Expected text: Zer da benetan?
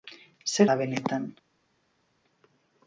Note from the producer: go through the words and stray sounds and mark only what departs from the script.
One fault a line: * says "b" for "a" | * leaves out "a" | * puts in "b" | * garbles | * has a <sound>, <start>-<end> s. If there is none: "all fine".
all fine